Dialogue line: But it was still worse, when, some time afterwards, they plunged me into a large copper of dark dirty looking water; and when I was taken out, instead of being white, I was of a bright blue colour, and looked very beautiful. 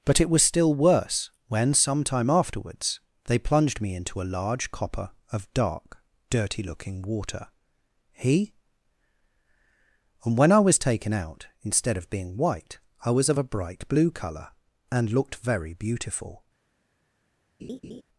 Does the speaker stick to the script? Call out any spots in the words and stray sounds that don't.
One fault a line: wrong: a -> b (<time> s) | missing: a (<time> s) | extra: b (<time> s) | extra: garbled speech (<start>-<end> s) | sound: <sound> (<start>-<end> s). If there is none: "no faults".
extra: he (8.1 s)
sound: laugh (17.6-18.0 s)